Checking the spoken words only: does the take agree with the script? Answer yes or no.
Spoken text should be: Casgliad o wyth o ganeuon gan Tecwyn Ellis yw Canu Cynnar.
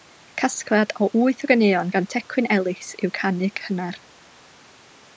yes